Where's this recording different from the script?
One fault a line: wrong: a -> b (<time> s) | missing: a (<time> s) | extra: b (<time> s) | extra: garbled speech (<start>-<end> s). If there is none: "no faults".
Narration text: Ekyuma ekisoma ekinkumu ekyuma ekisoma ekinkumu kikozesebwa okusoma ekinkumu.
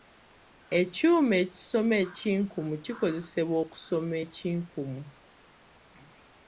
missing: ekyuma ekisoma ekinkumu (2.7 s)